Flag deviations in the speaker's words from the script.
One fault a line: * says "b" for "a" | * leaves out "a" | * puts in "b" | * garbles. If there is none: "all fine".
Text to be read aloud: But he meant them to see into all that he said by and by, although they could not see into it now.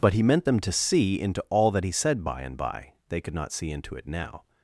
* leaves out "although"